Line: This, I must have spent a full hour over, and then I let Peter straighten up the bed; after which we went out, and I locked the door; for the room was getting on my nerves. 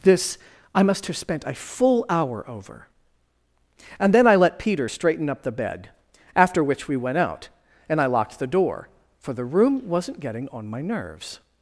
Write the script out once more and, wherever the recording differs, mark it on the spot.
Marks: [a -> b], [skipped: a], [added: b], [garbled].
This, I must have spent a full hour over, and then I let Peter straighten up the bed; after which we went out, and I locked the door; for the room [was -> wasn't] getting on my nerves.